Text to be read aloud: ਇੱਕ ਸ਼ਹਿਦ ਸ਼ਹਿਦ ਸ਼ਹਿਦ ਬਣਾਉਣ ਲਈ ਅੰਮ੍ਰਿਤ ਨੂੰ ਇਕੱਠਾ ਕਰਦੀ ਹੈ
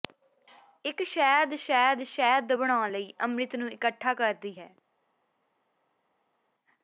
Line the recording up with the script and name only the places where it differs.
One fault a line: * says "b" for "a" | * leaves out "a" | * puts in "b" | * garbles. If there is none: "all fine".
all fine